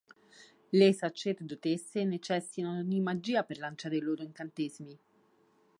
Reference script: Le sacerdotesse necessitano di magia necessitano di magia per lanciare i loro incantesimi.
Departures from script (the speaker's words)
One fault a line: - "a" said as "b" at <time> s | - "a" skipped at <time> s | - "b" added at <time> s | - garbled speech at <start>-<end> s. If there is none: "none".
- "necessitano di magia" skipped at 3.4 s